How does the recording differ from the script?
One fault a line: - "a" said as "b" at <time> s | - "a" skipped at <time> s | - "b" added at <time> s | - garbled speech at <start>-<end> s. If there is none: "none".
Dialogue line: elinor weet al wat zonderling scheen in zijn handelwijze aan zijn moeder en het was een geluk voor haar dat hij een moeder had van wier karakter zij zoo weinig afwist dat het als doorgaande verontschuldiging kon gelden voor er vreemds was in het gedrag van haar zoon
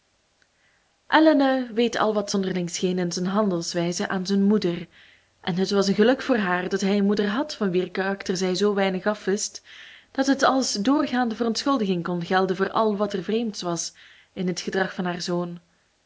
- "al wat" added at 12.7 s